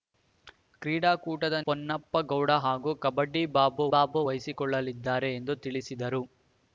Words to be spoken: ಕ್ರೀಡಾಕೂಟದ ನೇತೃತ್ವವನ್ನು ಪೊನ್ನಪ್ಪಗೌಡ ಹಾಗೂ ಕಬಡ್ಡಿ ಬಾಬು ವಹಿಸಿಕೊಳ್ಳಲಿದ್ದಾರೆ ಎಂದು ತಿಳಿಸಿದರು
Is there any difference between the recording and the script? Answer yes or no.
yes